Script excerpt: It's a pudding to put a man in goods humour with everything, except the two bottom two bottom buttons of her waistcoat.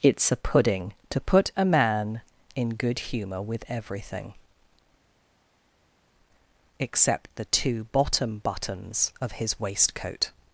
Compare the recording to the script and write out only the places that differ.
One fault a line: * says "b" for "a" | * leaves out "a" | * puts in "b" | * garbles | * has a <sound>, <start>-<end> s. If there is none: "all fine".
* says "good" for "goods"
* leaves out "two bottom"
* says "his" for "her"